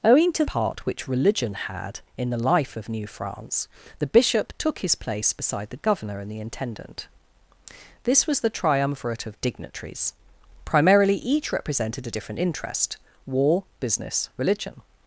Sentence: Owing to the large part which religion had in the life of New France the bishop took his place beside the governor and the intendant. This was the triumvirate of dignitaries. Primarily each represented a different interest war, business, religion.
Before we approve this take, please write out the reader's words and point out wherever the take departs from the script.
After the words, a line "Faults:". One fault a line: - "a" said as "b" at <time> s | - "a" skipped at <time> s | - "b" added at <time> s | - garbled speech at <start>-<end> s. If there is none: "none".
Owing to part which religion had in the life of New France the bishop took his place beside the governor and the intendant. This was the triumvirate of dignitaries. Primarily each represented a different interest war, business, religion.
Faults:
- "the large" skipped at 0.5 s